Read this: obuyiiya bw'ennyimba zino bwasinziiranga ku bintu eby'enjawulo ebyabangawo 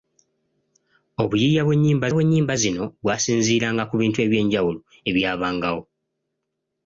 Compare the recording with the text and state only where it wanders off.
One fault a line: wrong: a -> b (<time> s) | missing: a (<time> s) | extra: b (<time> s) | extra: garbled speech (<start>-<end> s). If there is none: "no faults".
extra: bw'ennyimba (2.1 s)